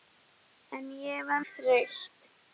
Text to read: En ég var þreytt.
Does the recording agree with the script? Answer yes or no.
yes